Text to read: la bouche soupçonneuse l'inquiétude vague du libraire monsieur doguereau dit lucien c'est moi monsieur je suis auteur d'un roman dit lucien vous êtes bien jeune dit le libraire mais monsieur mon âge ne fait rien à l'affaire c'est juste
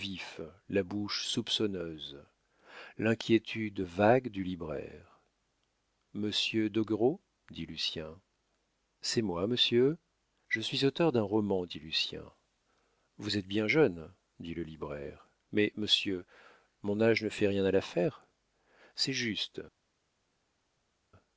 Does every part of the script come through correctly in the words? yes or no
yes